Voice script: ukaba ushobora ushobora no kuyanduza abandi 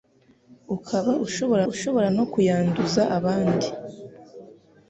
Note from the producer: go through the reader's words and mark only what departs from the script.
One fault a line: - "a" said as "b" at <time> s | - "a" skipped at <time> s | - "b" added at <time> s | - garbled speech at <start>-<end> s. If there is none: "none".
none